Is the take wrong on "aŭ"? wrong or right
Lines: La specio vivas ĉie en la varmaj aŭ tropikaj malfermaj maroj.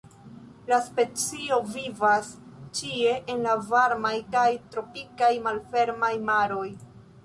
wrong